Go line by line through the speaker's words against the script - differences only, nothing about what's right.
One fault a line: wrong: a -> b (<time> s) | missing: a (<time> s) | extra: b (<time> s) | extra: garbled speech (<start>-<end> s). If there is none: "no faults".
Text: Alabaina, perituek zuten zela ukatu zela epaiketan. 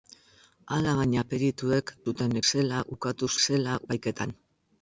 no faults